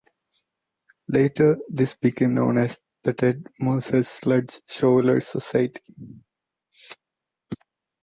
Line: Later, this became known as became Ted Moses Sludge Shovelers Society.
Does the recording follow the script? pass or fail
fail